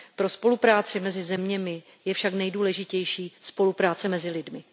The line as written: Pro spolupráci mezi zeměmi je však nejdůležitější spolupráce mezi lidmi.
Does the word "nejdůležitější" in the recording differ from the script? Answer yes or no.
no